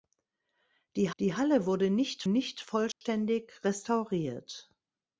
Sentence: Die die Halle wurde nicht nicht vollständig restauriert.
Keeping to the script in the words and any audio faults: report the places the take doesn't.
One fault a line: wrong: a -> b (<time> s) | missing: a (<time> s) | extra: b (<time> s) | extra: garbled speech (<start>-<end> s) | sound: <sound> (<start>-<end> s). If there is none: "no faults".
sound: dropout (2.9-3.0 s)